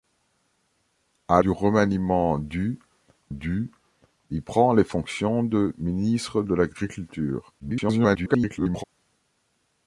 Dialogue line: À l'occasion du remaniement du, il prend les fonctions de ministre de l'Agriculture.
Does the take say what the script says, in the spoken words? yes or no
no